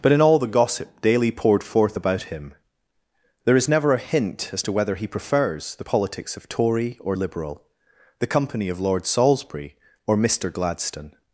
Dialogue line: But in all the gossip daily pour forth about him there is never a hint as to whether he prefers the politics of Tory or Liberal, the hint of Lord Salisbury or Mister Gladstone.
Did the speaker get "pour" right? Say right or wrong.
wrong